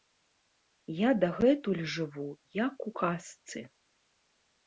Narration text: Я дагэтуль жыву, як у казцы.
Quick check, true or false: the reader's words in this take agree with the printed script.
true